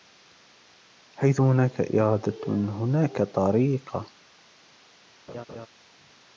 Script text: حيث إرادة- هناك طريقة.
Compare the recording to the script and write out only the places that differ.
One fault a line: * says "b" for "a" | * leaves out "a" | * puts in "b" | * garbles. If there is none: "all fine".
* puts in "هناك"